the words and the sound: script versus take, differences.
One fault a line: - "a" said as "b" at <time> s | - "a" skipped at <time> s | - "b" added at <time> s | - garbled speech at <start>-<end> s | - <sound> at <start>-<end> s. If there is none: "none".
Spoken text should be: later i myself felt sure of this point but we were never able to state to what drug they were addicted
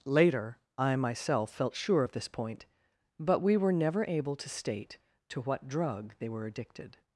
none